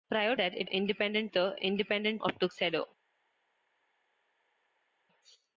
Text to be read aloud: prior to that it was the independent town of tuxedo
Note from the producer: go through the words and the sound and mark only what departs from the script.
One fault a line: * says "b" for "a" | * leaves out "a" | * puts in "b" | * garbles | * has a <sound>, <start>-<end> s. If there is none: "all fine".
* leaves out "to"
* says "independent" for "was"
* leaves out "town"